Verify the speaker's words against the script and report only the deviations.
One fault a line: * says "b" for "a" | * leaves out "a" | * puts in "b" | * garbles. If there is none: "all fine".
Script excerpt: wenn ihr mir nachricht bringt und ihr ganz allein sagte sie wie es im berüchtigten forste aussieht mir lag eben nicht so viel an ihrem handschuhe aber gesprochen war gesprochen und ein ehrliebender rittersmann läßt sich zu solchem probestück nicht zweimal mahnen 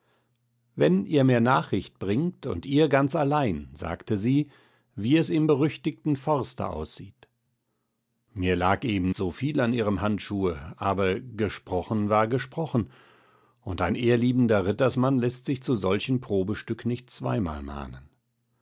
* leaves out "nicht"